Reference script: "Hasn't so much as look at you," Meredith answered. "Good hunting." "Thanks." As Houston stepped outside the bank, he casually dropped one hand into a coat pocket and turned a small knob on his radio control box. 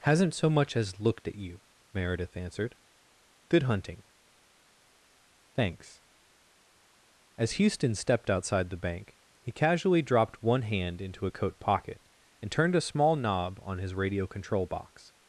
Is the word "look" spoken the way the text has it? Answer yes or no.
no